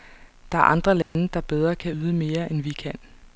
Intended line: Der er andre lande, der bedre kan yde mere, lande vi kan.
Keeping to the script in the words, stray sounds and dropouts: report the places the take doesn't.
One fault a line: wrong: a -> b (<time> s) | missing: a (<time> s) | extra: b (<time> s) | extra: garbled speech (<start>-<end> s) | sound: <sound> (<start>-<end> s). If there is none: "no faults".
sound: dropout (1.0-1.2 s)
wrong: lande -> end (2.5 s)